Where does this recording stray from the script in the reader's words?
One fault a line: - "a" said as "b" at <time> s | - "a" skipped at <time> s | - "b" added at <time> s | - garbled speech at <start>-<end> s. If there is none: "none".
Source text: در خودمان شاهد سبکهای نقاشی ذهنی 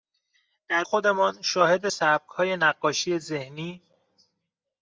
none